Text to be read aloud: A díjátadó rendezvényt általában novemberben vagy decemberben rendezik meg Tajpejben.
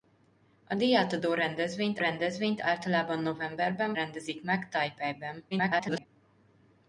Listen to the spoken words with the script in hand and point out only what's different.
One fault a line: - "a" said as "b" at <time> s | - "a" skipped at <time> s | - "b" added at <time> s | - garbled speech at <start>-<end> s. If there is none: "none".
- "rendezvényt" added at 2.0 s
- "vagy decemberben" skipped at 3.9 s
- garbled speech at 5.5-6.1 s